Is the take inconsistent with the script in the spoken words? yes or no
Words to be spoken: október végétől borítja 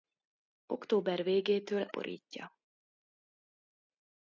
no